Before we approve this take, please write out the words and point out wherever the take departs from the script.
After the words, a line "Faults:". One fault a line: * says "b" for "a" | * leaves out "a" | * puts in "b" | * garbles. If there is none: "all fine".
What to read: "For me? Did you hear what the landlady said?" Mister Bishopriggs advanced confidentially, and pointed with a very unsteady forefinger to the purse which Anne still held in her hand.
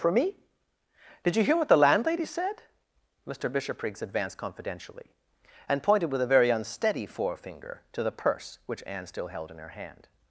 "For me? Did you hear what the landlady said?" Mister Bishopriggs advanced confidentially, and pointed with a very unsteady forefinger to the purse which Anne still held in her hand.
Faults:
all fine